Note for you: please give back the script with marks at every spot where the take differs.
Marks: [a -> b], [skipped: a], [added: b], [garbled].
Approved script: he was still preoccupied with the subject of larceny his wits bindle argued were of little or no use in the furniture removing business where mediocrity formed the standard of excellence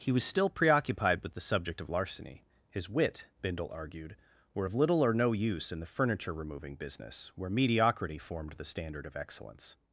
he was still preoccupied with the subject of larceny his [wits -> wit] bindle argued were of little or no use in the furniture removing business where mediocrity formed the standard of excellence